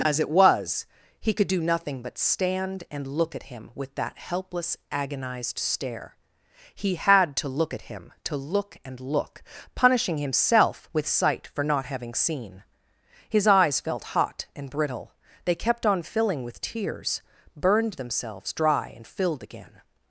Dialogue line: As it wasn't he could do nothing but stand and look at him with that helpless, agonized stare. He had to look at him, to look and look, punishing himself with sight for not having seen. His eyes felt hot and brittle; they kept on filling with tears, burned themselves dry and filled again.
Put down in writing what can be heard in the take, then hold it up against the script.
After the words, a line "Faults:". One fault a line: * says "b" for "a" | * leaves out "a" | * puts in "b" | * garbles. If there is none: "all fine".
As it was he could do nothing but stand and look at him with that helpless, agonized stare. He had to look at him, to look and look, punishing himself with sight for not having seen. His eyes felt hot and brittle; they kept on filling with tears, burned themselves dry and filled again.
Faults:
* says "was" for "wasn't"